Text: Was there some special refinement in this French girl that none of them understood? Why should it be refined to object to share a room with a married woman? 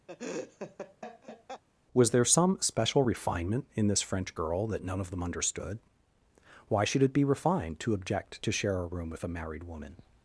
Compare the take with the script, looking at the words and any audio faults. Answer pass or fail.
fail